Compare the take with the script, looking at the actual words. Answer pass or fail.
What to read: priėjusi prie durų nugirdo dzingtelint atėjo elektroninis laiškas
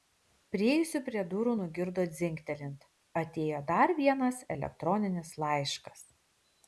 fail